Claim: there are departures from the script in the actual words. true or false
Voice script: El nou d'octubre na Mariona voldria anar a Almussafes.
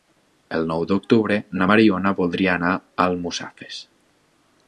false